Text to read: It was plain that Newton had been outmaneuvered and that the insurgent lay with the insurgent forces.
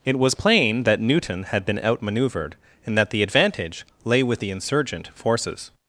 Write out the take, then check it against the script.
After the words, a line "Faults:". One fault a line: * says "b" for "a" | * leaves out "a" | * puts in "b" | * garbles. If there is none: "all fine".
It was plain that Newton had been outmaneuvered and that the advantage lay with the insurgent forces.
Faults:
* says "advantage" for "insurgent"